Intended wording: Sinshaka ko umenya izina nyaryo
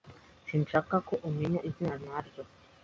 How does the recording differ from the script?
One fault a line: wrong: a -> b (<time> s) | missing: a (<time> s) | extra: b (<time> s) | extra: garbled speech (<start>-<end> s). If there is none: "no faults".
no faults